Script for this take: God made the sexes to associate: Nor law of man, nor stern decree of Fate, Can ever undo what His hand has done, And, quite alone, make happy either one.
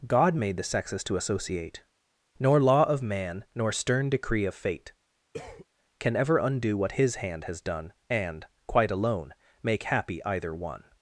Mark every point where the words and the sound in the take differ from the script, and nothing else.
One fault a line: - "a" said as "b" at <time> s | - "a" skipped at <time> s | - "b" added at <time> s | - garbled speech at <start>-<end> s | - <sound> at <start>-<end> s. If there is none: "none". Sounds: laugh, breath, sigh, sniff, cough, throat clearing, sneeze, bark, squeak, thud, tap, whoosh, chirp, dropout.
- cough at 5.3-5.7 s